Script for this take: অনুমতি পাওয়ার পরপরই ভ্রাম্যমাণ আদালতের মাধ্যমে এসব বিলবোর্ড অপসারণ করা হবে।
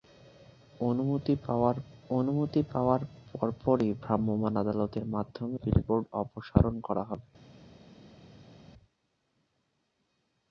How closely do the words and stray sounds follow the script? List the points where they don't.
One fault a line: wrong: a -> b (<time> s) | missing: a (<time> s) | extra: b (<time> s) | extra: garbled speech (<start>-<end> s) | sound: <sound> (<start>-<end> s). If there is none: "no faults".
extra: অনুমতি পাওয়ার (2.1 s)
missing: এসব (5.6 s)